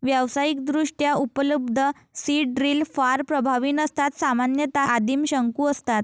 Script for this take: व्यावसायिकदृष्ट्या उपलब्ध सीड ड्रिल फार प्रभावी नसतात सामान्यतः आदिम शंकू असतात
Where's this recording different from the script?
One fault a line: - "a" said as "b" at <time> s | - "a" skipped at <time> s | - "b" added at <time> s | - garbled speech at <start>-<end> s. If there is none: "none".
none